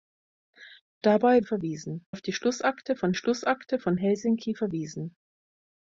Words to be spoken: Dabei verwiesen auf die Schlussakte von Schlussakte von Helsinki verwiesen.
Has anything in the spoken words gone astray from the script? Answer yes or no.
no